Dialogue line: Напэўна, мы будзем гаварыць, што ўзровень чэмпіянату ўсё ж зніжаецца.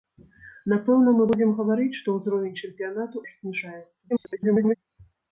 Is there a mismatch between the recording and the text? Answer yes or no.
yes